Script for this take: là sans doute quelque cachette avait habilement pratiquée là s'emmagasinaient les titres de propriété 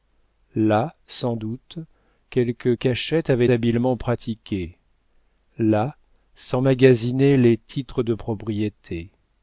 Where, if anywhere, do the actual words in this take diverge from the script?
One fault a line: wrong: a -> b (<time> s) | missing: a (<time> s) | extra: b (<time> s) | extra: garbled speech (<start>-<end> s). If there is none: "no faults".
no faults